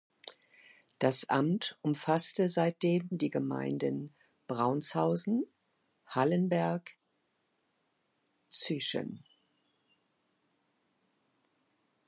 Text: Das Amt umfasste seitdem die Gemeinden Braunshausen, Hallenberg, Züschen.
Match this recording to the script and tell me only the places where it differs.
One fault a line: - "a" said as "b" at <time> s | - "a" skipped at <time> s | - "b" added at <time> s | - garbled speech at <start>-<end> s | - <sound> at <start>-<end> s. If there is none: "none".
none